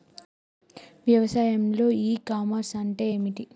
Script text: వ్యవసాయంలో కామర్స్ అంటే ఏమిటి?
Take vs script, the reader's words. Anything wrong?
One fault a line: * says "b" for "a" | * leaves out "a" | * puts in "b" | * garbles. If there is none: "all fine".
* puts in "ఇ"